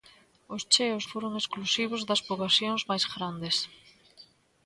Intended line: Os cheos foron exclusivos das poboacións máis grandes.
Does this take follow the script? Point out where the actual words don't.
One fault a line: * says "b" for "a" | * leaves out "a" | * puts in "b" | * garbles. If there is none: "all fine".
all fine